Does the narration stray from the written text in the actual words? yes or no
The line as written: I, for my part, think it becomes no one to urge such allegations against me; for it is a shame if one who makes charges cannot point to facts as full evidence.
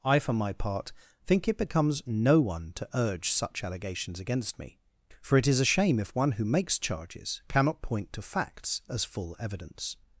no